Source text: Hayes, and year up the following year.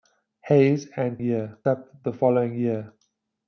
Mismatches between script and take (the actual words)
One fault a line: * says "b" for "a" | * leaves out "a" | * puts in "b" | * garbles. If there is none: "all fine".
all fine